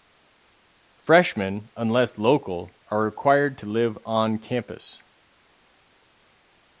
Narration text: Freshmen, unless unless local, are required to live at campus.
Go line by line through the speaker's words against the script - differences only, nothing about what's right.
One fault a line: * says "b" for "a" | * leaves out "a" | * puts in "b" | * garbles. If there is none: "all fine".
* leaves out "unless"
* says "on" for "at"